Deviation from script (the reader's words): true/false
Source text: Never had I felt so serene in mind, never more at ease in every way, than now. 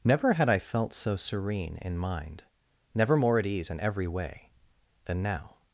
false